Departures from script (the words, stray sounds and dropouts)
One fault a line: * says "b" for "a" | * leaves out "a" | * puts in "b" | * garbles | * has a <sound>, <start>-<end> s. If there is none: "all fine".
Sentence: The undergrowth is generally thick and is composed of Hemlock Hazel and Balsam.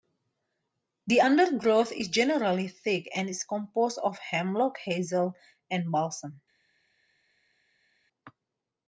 all fine